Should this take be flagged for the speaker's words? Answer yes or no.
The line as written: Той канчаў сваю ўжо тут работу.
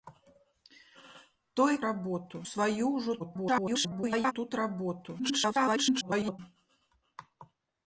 yes